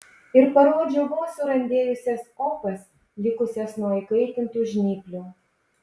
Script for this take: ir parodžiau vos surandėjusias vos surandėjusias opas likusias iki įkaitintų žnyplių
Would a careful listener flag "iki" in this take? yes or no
yes